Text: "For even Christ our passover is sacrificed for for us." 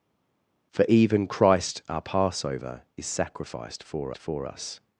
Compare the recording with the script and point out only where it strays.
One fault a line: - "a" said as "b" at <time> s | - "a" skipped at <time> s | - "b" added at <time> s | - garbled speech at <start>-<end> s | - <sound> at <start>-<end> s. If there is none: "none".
none